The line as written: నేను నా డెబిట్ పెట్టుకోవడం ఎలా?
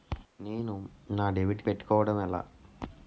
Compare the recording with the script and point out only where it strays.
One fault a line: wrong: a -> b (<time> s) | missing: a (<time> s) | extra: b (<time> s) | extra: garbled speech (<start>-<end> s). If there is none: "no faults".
no faults